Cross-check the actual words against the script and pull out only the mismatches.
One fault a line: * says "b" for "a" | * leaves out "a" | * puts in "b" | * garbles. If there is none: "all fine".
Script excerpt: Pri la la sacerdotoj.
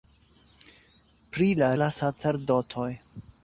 all fine